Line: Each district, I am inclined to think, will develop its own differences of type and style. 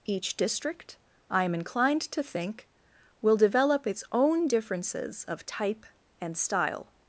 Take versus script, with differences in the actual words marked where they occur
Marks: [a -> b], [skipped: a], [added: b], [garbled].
Each district, I am inclined to think, will develop its own differences of type and style.